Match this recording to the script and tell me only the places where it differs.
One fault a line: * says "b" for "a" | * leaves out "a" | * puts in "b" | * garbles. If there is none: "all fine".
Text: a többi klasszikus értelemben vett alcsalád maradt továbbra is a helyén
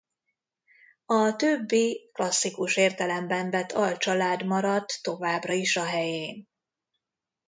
all fine